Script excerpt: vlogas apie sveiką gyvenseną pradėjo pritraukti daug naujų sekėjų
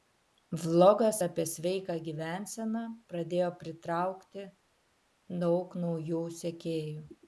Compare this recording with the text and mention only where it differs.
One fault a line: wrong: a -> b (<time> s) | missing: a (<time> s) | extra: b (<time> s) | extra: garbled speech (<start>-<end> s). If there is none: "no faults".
no faults